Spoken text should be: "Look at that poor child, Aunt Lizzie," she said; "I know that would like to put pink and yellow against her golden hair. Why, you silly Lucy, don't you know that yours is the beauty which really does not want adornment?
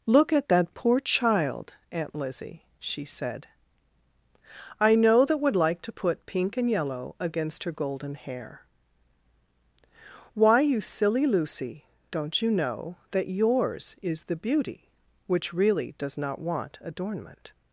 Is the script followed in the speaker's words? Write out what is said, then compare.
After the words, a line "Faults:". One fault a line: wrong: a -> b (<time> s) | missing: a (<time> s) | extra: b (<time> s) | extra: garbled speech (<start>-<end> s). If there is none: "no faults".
"Look at that poor child, Aunt Lizzie," she said; "I know that would like to put pink and yellow against her golden hair. Why, you silly Lucy, don't you know that yours is the beauty which really does not want adornment?
Faults:
no faults